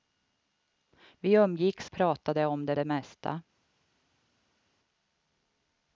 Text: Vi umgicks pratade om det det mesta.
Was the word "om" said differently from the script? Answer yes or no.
no